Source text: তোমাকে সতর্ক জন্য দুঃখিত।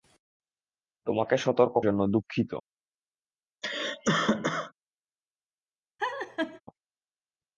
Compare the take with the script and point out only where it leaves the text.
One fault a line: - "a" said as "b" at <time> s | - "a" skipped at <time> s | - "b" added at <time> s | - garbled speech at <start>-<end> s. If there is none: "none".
none